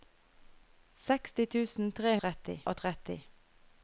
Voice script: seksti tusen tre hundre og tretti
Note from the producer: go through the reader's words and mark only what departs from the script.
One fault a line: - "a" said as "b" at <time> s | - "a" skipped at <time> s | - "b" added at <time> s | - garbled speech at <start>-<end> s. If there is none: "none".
- "hundre" said as "tretti" at 2.2 s